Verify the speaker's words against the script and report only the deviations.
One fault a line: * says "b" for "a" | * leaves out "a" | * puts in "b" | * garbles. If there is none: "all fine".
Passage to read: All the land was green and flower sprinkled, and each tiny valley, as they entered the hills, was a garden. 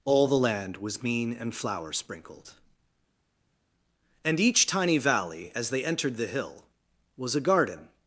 * says "mean" for "green"
* says "hill" for "hills"